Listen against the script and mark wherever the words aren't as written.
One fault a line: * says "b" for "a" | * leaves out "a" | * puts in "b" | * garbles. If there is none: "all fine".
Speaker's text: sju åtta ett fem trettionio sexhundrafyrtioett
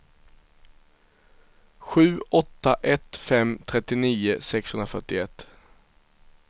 all fine